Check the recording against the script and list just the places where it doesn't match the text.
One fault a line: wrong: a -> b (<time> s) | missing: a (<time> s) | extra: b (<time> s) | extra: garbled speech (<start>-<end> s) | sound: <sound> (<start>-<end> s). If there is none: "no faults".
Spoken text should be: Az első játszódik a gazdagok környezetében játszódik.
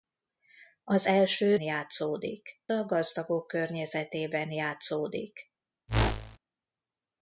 sound: whoosh (5.9-6.4 s)